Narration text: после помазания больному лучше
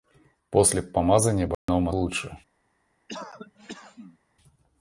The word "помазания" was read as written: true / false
true